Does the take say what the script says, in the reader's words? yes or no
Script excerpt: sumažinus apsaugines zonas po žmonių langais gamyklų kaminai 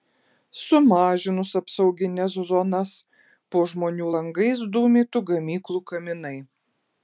no